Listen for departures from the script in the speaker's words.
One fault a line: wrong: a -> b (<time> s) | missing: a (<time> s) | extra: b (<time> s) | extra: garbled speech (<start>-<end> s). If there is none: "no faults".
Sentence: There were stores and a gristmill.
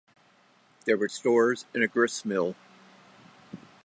no faults